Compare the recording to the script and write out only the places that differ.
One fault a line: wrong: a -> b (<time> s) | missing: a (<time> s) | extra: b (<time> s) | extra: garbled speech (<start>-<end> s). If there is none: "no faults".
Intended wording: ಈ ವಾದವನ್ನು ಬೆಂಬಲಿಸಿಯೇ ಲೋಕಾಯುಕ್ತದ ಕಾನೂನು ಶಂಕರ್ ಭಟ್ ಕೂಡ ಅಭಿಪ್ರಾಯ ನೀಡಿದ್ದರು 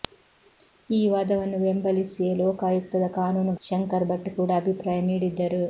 no faults